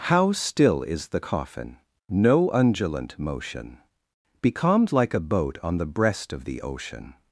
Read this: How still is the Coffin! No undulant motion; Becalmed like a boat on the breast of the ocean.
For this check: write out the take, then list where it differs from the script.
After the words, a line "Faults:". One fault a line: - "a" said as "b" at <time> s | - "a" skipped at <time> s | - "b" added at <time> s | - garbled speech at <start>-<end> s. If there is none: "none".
How still is the Coffin! No undulant motion; Becalmed like a boat on the breast of the ocean.
Faults:
none